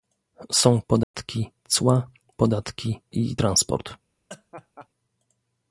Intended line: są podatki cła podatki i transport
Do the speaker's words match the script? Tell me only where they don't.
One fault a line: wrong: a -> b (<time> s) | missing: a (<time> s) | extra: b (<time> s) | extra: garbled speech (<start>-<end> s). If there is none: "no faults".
no faults